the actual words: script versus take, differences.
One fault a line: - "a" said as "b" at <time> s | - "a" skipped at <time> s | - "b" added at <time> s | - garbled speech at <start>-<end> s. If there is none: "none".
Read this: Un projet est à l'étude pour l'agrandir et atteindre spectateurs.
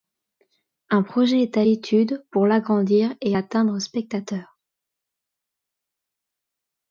none